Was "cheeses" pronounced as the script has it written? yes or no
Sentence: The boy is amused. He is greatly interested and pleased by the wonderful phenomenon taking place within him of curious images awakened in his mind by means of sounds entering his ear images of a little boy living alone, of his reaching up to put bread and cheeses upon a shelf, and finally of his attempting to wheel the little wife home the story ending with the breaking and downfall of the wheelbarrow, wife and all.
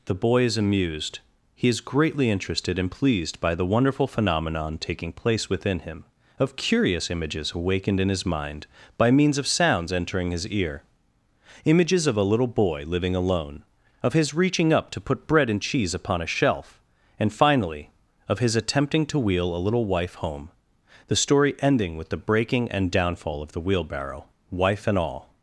no